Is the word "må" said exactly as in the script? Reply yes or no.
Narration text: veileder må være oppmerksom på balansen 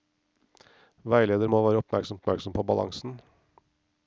yes